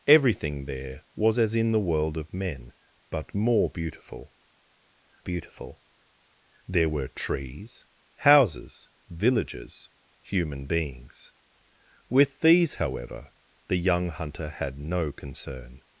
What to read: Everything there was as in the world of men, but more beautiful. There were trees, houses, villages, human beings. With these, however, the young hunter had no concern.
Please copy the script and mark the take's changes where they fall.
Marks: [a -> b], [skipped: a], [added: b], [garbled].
Everything there was as in the world of men, but more beautiful. [added: beautiful] There were trees, houses, villages, human beings. With these, however, the young hunter had no concern.